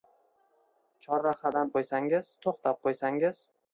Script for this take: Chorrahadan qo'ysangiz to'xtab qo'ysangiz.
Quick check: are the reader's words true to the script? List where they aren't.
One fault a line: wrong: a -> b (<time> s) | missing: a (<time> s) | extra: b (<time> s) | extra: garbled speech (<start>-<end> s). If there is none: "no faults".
no faults